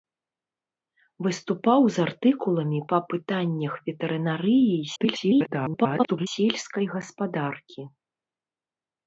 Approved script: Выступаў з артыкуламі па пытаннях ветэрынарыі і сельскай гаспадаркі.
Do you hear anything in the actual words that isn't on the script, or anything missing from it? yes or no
yes